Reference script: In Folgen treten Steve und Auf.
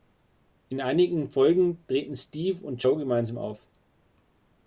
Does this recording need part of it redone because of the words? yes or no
yes